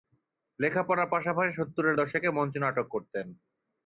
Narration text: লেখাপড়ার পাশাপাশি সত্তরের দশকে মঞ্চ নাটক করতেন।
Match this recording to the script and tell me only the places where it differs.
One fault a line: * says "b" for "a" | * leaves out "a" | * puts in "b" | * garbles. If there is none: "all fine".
all fine